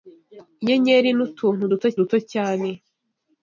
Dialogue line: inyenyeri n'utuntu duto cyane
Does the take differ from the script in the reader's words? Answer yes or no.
yes